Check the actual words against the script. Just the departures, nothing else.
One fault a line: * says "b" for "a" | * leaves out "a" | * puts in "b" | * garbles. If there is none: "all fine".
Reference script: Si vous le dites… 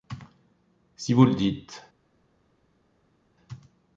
all fine